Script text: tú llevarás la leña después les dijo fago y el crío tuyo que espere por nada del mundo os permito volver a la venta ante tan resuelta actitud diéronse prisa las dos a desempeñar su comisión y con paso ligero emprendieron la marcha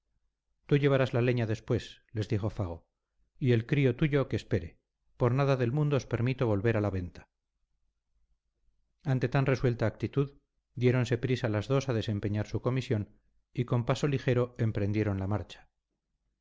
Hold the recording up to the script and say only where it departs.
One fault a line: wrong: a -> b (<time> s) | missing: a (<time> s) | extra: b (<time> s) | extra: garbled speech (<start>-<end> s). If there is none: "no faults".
no faults